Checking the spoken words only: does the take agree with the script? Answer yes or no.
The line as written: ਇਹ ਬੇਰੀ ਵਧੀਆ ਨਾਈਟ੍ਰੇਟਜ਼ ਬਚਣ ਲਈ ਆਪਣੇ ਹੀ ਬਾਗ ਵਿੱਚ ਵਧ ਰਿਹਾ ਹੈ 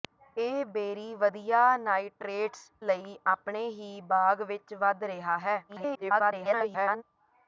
no